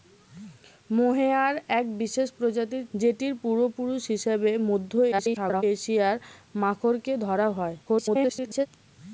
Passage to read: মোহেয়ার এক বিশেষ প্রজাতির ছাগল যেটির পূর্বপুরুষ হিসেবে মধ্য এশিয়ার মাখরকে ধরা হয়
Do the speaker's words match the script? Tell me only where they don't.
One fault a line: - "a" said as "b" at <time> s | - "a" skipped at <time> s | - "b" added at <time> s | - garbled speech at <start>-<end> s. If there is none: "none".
- "ছাগল" skipped at 2.8 s
- garbled speech at 5.1-5.6 s
- garbled speech at 7.8-8.7 s